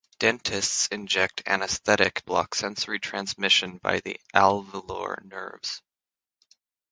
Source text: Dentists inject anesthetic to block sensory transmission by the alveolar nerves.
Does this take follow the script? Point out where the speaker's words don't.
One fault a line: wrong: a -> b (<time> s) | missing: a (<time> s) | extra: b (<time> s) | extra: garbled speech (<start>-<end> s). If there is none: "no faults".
missing: to (2.2 s)